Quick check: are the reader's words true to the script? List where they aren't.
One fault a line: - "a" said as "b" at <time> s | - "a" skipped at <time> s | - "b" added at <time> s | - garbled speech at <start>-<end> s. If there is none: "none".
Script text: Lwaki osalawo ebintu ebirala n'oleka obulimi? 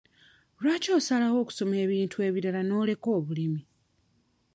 - "okusoma" added at 1.4 s